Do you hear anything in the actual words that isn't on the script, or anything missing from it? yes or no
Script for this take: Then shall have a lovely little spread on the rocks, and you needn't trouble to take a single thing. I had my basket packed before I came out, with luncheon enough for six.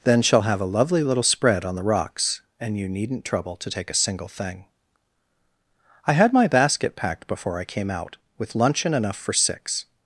no